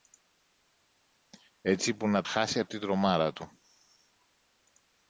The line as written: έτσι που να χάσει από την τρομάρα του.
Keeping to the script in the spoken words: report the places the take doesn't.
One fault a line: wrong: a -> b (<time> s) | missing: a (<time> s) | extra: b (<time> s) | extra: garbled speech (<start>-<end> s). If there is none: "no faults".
no faults